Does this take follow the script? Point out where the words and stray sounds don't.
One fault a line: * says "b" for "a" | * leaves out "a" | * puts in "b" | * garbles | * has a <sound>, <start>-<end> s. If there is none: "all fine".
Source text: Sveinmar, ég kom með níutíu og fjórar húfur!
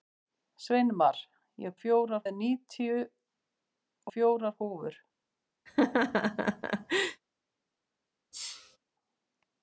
* says "fjórar" for "kom"
* leaves out "og"
* has a laugh, 5.7-7.2 s
* has a sneeze, 8.3-8.8 s